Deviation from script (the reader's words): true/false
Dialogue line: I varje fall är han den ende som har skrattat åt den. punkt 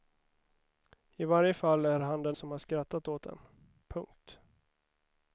true